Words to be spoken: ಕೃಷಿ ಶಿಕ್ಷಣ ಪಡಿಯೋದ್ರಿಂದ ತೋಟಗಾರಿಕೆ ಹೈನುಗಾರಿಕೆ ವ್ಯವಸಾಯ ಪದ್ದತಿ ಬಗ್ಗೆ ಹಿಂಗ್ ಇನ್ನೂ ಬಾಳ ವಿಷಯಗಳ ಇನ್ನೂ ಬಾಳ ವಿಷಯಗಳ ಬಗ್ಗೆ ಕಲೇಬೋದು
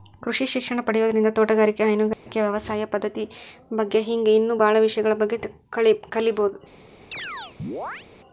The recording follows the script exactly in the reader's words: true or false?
false